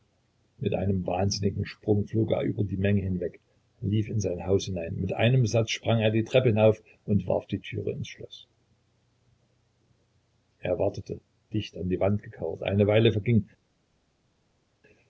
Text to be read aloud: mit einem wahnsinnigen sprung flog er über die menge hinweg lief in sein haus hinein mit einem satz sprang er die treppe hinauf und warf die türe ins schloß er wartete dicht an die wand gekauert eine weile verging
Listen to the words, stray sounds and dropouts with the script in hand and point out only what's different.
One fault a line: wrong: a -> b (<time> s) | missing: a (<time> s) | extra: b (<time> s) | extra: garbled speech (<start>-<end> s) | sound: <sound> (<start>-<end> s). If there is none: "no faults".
no faults